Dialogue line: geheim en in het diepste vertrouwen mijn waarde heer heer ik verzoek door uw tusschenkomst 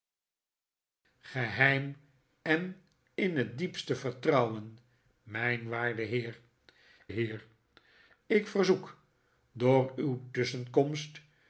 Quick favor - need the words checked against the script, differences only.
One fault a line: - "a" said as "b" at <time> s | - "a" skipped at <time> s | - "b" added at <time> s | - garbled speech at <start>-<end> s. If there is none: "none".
none